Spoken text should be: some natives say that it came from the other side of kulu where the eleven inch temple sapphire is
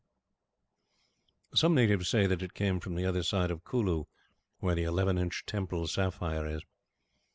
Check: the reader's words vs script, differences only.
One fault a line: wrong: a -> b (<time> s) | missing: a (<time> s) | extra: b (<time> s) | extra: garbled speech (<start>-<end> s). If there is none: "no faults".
no faults